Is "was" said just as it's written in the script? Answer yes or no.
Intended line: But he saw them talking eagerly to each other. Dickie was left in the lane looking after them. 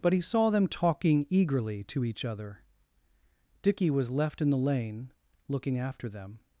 yes